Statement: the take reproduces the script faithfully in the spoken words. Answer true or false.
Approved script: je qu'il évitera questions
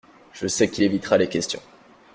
false